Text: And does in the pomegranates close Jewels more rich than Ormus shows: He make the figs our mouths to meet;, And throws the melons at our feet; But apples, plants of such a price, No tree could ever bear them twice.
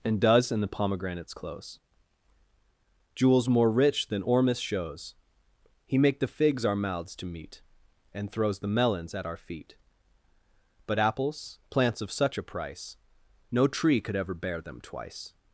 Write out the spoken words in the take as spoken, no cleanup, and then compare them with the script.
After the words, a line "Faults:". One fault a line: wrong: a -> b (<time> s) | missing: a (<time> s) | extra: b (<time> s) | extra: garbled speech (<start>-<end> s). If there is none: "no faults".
And does in the pomegranates close Jewels more rich than Ormus shows: He make the figs our mouths to meet;, And throws the melons at our feet; But apples, plants of such a price, No tree could ever bear them twice.
Faults:
no faults